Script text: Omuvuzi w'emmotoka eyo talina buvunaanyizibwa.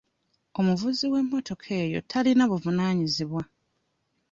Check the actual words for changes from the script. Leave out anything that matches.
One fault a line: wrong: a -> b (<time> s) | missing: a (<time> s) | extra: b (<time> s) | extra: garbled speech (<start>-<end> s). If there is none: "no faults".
no faults